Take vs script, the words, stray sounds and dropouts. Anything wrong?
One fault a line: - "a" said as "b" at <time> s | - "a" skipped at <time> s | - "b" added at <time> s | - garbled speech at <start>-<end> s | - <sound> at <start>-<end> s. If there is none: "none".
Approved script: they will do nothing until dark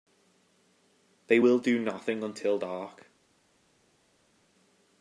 none